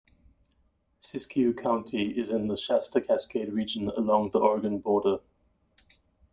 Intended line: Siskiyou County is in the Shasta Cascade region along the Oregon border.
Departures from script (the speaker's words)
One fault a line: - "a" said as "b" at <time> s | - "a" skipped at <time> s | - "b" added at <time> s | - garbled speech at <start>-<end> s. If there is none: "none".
none